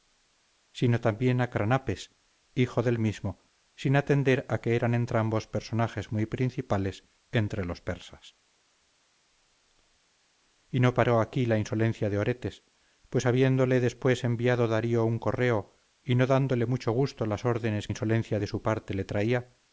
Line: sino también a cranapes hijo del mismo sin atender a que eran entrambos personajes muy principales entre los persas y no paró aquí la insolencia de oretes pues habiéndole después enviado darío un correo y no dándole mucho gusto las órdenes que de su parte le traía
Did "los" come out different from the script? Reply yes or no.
no